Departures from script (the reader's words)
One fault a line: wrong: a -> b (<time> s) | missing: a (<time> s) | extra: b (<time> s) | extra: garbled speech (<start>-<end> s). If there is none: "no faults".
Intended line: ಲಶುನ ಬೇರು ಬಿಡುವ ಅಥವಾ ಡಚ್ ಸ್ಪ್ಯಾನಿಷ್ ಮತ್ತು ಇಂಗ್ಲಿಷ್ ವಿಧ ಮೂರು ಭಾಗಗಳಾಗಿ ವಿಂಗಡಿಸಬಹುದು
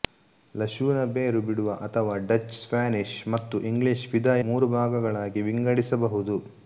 no faults